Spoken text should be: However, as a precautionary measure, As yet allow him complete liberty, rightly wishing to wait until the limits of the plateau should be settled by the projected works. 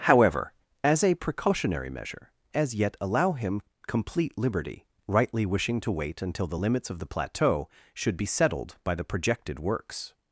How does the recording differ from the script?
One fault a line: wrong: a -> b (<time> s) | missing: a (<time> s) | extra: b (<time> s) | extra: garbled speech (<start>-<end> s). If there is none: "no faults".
no faults